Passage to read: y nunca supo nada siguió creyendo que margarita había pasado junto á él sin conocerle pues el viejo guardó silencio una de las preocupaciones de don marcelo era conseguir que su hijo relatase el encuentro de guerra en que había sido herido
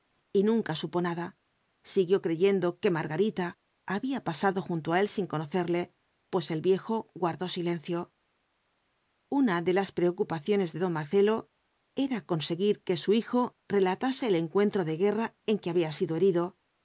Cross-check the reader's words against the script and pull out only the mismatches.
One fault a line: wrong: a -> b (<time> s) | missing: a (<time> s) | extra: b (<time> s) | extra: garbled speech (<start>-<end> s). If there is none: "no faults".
no faults